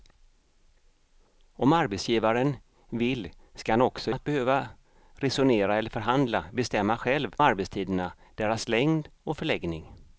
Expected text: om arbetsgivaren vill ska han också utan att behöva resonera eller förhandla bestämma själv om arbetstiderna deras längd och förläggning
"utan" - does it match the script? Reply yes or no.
no